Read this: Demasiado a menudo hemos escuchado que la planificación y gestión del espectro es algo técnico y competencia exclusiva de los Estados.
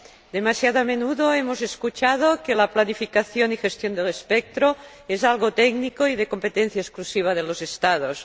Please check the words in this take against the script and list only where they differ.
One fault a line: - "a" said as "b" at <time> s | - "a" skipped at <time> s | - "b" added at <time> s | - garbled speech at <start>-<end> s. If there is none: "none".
- "de" added at 6.2 s